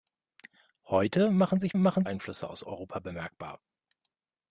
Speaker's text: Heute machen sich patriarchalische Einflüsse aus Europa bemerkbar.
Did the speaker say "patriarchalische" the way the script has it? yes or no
no